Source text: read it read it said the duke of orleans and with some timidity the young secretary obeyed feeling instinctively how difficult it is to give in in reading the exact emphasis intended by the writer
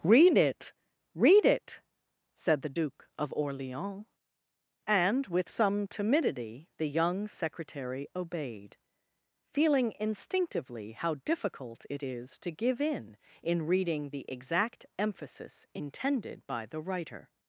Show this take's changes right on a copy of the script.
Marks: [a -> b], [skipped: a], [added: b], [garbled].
read it read it said the duke of orleans and with some timidity the young secretary obeyed feeling instinctively how difficult it is to give in in reading the exact emphasis intended by the writer